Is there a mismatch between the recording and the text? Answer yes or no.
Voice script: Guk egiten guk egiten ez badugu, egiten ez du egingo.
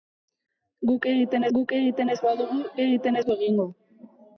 no